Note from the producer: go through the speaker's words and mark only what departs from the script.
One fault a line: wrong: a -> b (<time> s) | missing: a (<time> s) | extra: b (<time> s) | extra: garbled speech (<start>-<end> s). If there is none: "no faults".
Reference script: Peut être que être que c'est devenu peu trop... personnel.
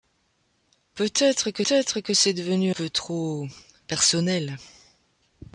no faults